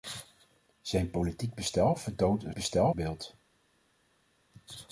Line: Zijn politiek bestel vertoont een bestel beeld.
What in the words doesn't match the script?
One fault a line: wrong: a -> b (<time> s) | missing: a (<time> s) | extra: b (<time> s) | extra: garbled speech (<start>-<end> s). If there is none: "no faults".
no faults